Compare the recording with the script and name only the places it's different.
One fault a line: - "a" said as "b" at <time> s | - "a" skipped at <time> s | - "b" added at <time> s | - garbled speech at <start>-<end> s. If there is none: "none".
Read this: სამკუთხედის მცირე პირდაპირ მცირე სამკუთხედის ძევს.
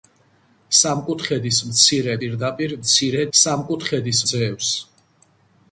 none